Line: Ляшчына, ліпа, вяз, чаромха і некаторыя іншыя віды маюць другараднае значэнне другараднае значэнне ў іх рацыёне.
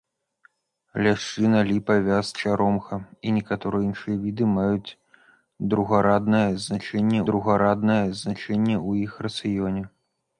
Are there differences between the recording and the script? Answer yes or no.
no